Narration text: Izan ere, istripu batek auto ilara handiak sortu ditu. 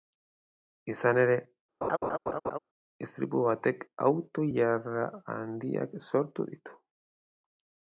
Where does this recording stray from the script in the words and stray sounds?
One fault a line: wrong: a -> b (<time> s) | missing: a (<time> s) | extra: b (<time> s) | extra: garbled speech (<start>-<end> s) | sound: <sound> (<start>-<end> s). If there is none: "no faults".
sound: laugh (1.8-2.6 s)